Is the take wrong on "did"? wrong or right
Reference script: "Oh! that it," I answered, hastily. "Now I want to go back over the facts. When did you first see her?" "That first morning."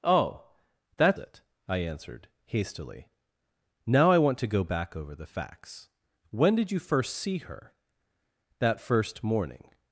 right